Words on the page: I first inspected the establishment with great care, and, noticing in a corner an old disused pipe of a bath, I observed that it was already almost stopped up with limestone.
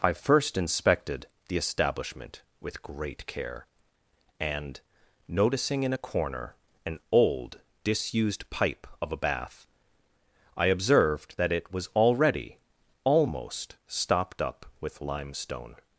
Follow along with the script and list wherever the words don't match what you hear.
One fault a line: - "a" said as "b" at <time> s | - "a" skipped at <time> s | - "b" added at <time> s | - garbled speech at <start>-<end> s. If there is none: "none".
none